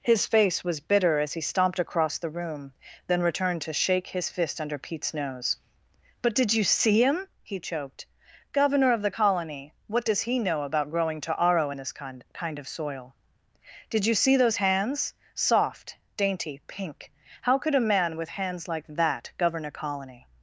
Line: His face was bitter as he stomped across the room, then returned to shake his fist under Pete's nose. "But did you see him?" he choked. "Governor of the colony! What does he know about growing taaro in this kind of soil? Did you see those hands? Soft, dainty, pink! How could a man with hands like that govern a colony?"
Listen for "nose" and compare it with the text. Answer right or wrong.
right